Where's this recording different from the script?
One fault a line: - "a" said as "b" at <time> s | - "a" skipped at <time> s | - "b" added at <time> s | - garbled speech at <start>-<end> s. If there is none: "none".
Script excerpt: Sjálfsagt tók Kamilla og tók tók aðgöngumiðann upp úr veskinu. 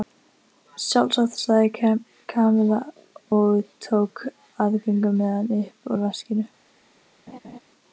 - "tók" said as "sagði" at 1.4 s
- "tók" skipped at 4.2 s